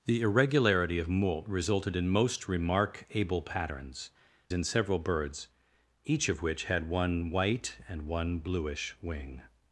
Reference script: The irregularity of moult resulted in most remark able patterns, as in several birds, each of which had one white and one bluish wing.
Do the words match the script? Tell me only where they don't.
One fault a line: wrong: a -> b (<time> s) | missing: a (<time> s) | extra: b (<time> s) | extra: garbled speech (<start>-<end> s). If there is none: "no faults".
missing: as (4.1 s)